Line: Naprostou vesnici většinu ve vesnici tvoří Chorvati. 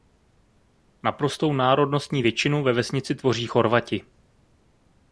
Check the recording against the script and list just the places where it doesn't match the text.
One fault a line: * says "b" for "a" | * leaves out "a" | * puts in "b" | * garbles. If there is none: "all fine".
* says "národnostní" for "vesnici"